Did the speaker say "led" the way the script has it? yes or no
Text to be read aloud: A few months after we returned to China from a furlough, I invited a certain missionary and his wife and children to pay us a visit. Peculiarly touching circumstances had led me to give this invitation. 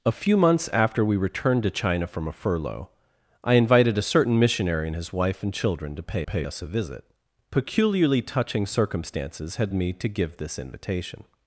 no